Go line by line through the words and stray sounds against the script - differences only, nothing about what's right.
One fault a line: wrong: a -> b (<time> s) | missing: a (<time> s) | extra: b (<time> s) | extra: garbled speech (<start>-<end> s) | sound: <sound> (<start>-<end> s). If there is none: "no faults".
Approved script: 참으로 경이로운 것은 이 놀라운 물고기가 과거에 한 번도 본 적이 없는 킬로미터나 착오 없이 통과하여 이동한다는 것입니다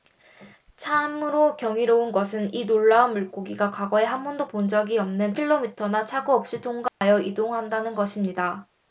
sound: dropout (6.9-7.0 s)